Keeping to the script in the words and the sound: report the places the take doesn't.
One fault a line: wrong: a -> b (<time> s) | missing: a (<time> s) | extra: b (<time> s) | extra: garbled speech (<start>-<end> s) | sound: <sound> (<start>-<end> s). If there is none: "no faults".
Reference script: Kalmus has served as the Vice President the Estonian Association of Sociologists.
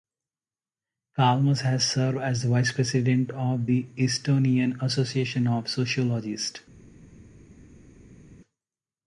extra: of (3.3 s)